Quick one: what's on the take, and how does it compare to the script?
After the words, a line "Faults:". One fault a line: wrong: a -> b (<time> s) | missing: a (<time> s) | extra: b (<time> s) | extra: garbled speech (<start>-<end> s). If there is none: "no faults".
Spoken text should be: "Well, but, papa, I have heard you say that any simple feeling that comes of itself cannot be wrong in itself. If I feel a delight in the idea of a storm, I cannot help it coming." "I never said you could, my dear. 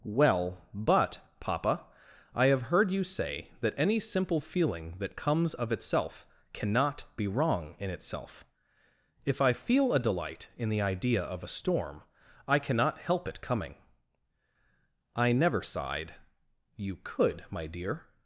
"Well, but, papa, I have heard you say that any simple feeling that comes of itself cannot be wrong in itself. If I feel a delight in the idea of a storm, I cannot help it coming." "I never sighed you could, my dear.
Faults:
wrong: said -> sighed (15.6 s)